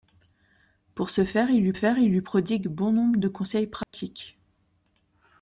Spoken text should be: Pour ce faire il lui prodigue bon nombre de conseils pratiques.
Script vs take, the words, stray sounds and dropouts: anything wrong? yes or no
yes